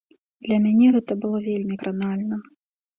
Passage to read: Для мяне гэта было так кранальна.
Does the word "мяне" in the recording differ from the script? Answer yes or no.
no